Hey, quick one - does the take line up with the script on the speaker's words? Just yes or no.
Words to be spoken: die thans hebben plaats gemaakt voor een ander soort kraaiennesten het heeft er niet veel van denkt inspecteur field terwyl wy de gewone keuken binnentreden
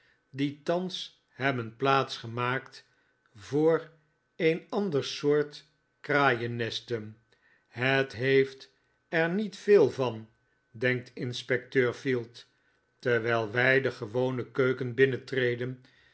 yes